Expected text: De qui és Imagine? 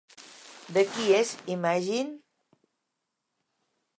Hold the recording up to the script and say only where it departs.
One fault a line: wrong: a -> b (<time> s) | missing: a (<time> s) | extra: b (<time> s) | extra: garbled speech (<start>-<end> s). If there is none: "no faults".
no faults